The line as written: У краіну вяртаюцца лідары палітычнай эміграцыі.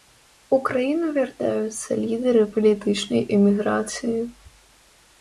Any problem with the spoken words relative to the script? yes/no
no